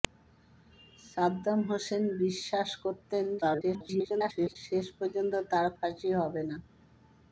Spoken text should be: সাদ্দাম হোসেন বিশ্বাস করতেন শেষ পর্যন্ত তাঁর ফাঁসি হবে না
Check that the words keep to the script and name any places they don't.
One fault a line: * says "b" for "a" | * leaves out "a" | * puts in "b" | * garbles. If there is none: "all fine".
* garbles